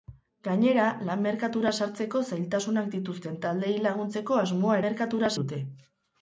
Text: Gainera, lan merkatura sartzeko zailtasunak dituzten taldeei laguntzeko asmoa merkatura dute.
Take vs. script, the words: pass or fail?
pass